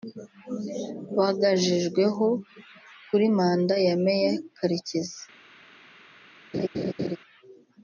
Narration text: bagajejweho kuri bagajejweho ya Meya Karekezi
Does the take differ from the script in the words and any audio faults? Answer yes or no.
yes